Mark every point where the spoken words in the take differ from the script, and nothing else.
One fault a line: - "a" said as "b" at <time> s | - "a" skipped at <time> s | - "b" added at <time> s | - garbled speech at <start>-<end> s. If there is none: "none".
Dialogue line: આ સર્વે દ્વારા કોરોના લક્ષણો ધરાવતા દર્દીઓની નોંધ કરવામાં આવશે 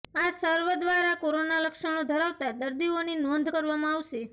none